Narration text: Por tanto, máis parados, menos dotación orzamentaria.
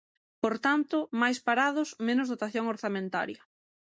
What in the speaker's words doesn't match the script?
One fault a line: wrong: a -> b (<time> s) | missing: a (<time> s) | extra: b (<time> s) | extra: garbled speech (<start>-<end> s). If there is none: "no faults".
no faults